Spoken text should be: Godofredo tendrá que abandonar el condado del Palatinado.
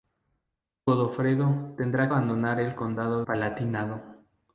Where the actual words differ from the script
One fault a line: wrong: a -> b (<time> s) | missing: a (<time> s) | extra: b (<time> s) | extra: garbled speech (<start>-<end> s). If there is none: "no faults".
missing: que (2.1 s)
missing: del (3.2 s)